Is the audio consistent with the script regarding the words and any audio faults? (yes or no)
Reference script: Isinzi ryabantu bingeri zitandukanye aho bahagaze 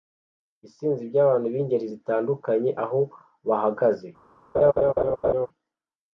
no